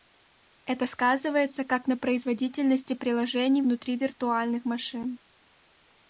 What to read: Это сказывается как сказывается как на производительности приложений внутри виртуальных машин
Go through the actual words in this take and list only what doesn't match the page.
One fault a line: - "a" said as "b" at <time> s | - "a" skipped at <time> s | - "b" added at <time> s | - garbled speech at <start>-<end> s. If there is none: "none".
- "сказывается как" skipped at 1.9 s